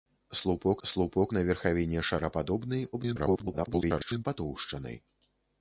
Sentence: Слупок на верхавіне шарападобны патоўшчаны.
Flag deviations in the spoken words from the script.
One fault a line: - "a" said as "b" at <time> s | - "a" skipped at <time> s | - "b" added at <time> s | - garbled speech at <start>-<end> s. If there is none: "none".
- "слупок" added at 0.9 s
- garbled speech at 2.9-4.2 s